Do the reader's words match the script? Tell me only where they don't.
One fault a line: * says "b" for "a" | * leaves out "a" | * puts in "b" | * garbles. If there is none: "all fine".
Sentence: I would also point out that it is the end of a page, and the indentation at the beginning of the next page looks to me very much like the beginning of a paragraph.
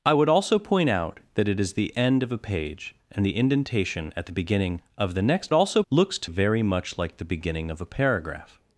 * says "also" for "page"
* leaves out "me"